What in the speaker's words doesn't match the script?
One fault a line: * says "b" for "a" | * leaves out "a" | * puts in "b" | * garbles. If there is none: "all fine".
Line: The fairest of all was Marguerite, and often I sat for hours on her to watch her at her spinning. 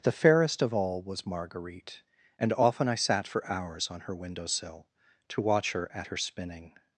* puts in "window sill"